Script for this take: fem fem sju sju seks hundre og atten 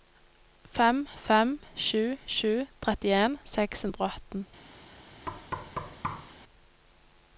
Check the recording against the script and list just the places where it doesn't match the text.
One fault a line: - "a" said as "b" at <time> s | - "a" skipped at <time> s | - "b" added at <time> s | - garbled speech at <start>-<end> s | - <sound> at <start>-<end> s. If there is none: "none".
- "trettien" added at 2.9 s
- thud at 5.3-6.3 s